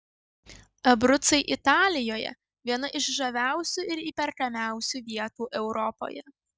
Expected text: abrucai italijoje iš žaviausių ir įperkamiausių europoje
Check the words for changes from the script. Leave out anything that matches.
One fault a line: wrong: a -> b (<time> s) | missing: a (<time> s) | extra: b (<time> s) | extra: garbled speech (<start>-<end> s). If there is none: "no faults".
extra: viena (2.7 s)
extra: vietų (5.1 s)